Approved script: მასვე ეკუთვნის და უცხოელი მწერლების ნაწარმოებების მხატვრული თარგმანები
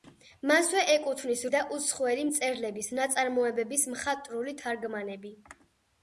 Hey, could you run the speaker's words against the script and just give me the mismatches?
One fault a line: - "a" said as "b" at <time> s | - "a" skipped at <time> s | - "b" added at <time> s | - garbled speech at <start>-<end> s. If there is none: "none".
none